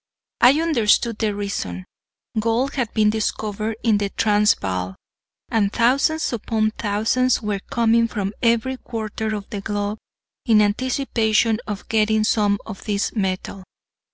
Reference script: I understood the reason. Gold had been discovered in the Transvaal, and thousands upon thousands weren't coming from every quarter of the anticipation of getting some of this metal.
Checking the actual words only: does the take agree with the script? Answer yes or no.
no